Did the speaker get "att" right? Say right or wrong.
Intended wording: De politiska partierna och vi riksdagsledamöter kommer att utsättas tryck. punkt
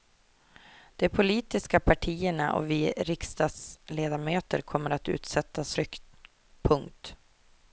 right